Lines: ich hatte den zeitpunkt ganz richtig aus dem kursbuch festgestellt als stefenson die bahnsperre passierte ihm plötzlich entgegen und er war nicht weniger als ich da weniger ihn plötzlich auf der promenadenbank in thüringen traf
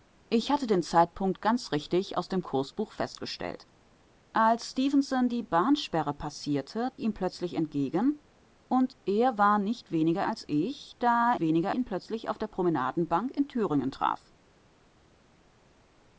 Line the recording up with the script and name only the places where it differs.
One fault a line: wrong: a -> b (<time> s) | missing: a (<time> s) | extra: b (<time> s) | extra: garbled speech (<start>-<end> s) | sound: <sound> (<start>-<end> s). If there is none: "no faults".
no faults